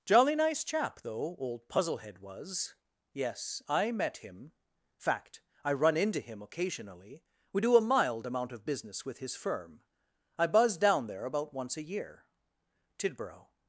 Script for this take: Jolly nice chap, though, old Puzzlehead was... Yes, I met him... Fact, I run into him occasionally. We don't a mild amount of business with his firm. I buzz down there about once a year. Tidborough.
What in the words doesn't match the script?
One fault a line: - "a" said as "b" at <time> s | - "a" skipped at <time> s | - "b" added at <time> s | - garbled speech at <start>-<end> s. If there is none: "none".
- "don't" said as "do" at 7.6 s